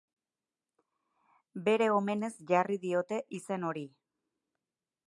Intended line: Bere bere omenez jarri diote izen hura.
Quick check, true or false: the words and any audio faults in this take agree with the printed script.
false